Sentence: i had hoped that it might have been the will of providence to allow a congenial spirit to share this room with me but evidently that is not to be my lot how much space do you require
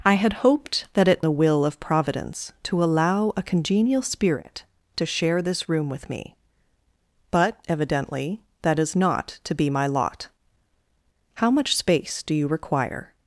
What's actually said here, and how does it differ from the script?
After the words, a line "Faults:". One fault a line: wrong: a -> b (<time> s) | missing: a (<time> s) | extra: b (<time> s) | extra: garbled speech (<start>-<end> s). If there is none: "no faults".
i had hoped that it the will of providence to allow a congenial spirit to share this room with me but evidently that is not to be my lot how much space do you require
Faults:
missing: might have been (1.2 s)